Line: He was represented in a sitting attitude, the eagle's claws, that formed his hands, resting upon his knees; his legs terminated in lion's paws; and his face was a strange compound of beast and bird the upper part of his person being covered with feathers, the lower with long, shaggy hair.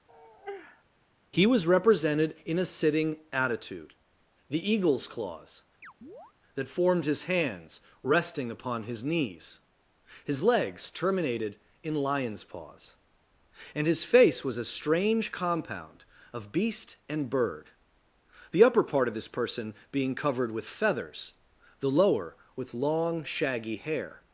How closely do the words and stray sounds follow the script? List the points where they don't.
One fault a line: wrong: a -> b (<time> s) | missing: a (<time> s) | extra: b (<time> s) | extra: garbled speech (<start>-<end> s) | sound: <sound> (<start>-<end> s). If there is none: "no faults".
sound: sigh (0.1-0.8 s)
sound: chirp (5.8-6.3 s)